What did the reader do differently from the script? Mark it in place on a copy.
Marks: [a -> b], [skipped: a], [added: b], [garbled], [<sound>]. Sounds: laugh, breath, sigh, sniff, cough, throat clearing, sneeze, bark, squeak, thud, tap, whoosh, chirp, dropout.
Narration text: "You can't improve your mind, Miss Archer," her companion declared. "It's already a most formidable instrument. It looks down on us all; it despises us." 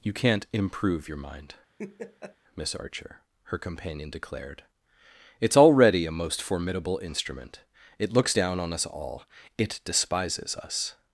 "You can't improve your mind, [laugh] Miss Archer," her companion declared. "It's already a most formidable instrument. It looks down on us all; it despises us."